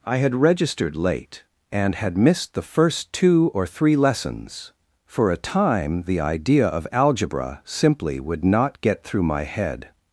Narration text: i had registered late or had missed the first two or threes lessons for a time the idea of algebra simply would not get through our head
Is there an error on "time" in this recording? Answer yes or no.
no